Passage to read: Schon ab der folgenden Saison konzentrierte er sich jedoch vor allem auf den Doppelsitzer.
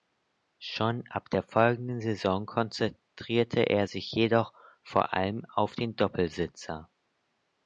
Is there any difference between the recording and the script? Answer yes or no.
no